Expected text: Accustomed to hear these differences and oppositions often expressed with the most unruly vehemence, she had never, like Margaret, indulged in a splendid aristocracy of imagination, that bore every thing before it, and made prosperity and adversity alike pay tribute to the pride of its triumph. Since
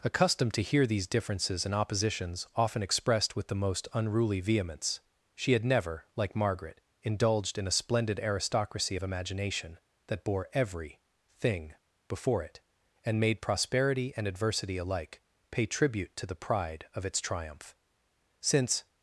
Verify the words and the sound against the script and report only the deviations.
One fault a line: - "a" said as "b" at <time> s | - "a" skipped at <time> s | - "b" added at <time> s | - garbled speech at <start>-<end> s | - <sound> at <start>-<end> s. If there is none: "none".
none